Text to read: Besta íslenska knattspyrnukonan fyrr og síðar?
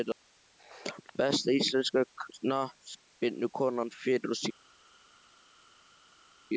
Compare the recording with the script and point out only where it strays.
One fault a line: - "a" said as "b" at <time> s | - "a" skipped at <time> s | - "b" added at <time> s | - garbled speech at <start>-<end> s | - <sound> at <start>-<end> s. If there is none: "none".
none